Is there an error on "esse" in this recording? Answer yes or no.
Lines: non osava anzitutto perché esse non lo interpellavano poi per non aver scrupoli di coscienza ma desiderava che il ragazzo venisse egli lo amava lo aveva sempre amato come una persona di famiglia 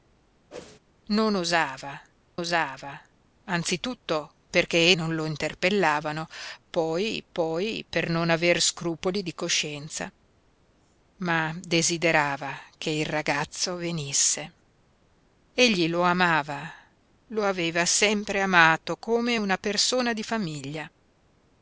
yes